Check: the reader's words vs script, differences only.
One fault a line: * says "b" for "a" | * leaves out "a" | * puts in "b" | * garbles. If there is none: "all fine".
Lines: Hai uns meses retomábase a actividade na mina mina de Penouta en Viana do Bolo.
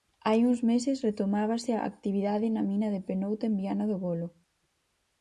* leaves out "mina"